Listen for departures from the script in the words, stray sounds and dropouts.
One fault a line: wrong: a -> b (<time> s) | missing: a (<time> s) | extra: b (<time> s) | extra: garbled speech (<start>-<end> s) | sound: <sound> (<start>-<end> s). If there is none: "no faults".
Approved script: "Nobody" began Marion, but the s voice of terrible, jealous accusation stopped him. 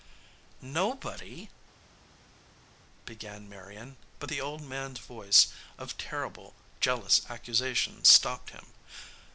extra: old man (4.4 s)